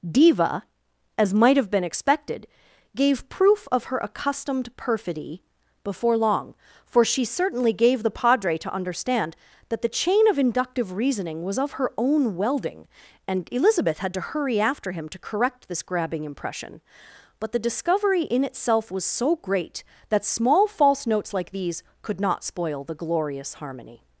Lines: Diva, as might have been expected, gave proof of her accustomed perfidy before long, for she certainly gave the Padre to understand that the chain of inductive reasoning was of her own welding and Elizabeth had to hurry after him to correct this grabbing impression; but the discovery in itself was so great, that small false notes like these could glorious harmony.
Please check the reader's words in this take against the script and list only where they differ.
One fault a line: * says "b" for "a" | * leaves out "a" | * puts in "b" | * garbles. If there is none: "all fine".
* puts in "not spoil the"